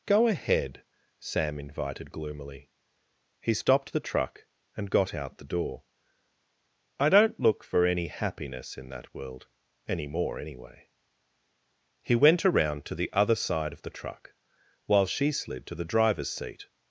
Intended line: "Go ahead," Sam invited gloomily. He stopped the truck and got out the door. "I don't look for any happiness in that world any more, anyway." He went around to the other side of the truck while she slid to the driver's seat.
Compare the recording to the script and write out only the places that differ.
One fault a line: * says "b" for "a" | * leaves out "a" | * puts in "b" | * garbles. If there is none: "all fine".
all fine